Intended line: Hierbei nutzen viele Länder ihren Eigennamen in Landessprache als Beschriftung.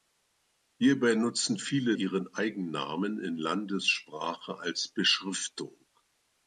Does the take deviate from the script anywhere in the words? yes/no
yes